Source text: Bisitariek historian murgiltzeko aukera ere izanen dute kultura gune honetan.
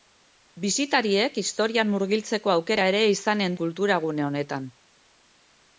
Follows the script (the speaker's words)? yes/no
no